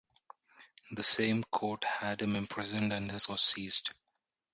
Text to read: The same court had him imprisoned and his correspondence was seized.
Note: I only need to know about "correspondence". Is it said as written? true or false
false